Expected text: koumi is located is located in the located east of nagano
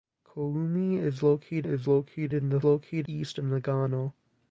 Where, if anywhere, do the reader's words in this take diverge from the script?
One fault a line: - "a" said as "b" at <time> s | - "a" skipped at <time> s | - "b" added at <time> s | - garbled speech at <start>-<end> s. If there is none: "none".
none